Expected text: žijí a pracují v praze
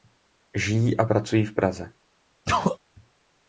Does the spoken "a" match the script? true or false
true